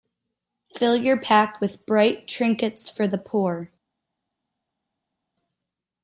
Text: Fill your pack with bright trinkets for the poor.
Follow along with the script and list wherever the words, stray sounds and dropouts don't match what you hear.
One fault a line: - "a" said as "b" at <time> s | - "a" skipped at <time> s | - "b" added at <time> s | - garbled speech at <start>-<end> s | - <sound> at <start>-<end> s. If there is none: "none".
none